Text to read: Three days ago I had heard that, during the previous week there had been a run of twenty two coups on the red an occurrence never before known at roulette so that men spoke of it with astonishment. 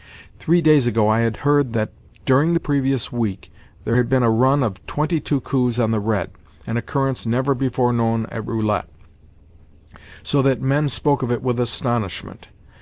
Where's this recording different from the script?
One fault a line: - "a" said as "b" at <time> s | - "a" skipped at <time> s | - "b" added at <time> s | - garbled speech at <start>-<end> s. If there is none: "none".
none